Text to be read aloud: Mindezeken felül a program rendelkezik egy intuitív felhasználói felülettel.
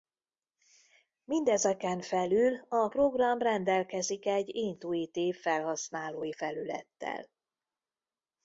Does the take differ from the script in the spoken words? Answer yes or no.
no